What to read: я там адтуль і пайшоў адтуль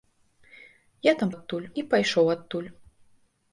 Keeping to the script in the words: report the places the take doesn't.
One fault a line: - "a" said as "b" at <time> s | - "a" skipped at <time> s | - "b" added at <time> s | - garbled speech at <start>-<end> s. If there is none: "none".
none